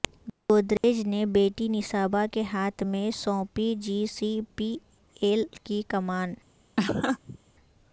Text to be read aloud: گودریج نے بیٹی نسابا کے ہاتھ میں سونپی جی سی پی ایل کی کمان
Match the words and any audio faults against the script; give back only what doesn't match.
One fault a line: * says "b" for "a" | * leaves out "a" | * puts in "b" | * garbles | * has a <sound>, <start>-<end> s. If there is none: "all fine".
* has a dropout, 0.8-0.8 s
* has a laugh, 6.8-7.4 s